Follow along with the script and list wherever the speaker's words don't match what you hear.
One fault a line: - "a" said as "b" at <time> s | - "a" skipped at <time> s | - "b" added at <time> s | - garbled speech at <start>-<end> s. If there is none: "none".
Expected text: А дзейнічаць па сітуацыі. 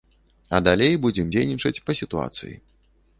- "далей будзем" added at 0.7 s